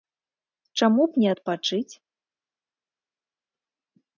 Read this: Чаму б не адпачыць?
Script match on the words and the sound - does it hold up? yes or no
yes